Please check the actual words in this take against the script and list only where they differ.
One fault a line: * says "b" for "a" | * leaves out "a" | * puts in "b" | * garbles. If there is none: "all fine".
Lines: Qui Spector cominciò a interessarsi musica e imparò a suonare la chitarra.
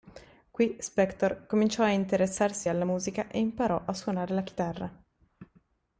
* puts in "alla"